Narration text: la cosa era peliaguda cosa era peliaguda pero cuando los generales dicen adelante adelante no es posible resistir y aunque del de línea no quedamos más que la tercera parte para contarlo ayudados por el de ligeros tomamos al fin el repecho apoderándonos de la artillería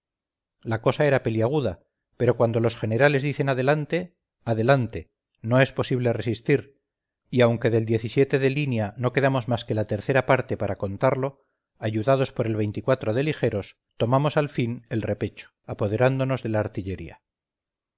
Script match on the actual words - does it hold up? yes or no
no